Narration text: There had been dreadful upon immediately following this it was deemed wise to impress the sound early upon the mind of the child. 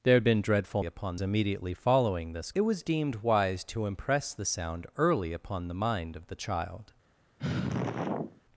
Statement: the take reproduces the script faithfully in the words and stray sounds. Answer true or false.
false